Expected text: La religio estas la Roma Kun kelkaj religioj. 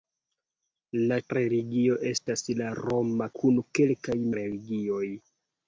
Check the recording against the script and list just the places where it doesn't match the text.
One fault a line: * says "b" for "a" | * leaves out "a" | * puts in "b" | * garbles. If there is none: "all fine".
all fine